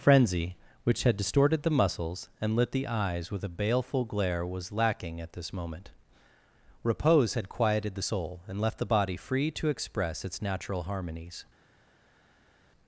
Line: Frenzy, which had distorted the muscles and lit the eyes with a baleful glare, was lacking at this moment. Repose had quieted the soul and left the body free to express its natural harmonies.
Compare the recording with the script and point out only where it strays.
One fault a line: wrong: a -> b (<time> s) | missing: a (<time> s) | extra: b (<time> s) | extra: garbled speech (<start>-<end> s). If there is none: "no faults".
no faults